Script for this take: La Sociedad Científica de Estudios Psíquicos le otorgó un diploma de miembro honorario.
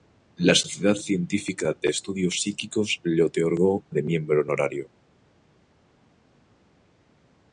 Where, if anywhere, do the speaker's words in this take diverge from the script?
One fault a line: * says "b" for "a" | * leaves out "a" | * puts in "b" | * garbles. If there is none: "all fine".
* leaves out "un diploma"